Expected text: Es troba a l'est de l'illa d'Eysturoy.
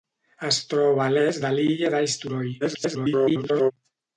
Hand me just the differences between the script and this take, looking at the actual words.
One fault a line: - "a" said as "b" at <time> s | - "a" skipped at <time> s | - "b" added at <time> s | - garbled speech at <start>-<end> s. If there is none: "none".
- garbled speech at 2.6-3.7 s